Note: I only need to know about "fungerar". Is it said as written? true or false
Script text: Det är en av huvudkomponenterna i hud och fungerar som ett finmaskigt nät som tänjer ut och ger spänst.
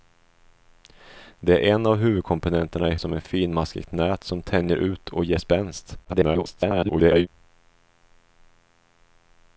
false